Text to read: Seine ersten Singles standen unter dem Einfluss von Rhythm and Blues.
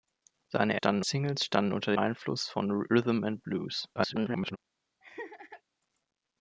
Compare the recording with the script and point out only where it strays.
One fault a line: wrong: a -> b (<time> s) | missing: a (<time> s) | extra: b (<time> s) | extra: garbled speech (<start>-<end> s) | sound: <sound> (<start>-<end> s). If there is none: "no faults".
wrong: ersten -> standen (0.8 s)
missing: dem (1.9 s)
extra: garbled speech (4.0-4.6 s)
sound: laugh (5.0-5.6 s)